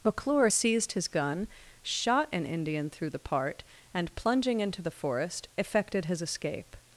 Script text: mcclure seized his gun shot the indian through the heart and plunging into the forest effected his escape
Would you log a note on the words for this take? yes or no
yes